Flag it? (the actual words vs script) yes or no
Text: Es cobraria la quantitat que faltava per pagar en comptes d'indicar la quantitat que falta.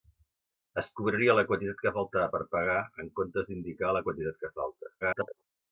yes